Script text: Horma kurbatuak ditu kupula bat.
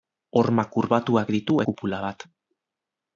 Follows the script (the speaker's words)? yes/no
yes